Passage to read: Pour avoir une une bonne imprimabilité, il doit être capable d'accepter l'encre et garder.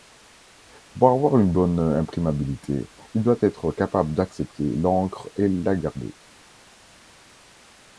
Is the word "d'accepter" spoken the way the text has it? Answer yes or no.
yes